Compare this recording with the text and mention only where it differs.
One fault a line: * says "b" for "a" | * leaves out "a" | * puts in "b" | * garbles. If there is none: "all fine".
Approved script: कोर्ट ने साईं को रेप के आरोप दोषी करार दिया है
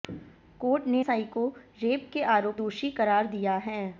all fine